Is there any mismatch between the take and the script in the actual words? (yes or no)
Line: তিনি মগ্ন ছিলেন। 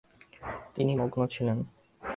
no